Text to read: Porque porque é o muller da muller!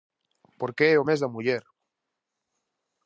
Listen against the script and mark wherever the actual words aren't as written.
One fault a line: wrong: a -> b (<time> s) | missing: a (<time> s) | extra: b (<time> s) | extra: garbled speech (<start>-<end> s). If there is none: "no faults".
missing: porque (0.8 s)
wrong: muller -> mes (1.1 s)